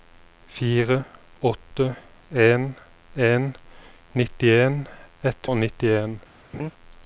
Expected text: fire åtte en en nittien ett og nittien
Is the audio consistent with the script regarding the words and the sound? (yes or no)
no